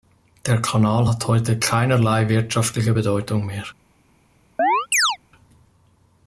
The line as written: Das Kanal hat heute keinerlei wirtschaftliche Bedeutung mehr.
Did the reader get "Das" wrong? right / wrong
wrong